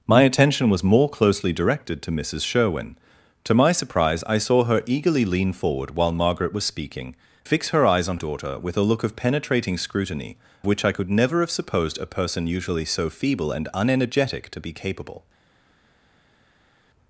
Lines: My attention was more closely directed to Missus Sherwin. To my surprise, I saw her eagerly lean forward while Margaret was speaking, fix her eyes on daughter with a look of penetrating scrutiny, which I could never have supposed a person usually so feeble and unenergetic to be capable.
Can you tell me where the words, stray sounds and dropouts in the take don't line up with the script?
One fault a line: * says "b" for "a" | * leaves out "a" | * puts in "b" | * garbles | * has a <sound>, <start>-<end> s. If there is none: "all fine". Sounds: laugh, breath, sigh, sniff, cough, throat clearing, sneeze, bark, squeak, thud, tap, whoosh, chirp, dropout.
all fine